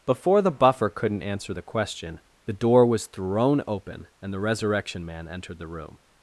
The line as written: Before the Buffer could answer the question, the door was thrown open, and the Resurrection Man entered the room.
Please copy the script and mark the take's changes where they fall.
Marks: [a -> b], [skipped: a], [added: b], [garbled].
Before the Buffer [could -> couldn't] answer the question, the door was thrown open, and the Resurrection Man entered the room.